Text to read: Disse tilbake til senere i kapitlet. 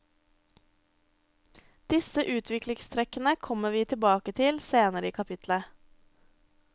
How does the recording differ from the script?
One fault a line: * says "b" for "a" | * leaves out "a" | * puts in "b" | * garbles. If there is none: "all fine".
* puts in "utviklingstrekkene kommer vi"